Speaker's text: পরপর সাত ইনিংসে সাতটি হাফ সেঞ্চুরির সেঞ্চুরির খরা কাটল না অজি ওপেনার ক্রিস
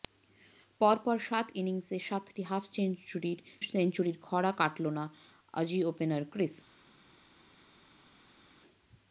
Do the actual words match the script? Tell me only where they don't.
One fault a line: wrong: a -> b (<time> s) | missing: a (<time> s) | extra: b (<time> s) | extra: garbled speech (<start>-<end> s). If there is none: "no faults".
no faults